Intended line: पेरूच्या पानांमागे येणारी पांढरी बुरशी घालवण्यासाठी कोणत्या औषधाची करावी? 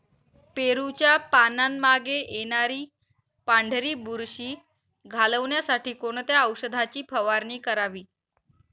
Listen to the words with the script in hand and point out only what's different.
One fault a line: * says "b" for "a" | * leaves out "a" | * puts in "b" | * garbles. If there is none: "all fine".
* puts in "फवारणी"